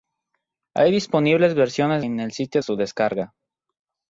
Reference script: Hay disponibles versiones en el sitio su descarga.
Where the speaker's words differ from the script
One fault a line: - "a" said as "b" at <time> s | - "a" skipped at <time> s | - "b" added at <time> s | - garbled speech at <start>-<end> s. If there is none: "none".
none